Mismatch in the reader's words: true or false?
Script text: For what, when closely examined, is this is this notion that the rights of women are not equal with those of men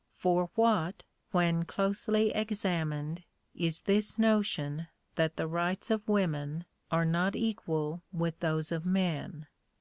true